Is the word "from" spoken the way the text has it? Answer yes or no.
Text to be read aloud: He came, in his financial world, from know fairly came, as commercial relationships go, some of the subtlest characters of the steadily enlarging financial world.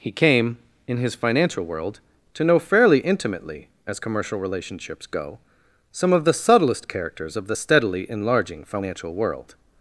no